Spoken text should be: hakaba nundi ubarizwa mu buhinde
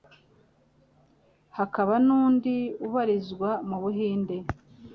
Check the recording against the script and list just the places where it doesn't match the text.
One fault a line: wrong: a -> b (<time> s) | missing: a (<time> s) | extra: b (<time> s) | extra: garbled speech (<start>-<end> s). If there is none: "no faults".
no faults